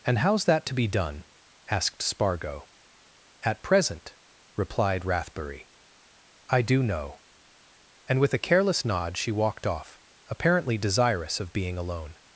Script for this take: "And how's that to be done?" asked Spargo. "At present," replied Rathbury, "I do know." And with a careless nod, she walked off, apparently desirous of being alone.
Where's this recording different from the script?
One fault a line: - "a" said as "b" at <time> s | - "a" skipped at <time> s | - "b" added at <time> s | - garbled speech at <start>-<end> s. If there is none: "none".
none